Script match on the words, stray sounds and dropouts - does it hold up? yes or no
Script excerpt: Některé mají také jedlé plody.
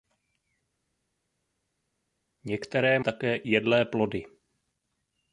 no